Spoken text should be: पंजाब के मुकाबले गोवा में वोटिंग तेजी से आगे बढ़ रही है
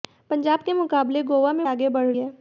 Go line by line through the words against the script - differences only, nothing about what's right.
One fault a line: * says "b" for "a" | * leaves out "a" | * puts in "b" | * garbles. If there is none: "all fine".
* leaves out "वोटिंग तेजी से"
* leaves out "रही"